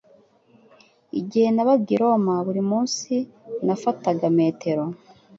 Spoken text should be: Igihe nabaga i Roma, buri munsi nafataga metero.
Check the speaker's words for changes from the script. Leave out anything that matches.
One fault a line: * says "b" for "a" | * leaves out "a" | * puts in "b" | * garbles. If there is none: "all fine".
all fine